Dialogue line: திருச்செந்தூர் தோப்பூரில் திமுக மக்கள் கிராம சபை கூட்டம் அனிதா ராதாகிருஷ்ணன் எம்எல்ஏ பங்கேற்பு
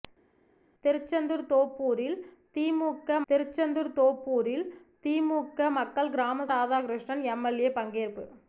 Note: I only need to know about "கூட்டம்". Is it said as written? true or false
false